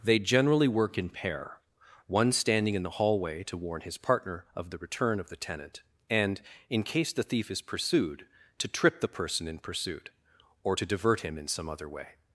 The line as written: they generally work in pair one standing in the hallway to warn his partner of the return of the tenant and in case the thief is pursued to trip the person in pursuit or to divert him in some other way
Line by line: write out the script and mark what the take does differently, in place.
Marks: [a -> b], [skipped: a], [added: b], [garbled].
they generally work in pair one standing in the hallway to warn his partner of the return of the tenant and in case the thief is pursued to trip the person in pursuit or to divert him in some other way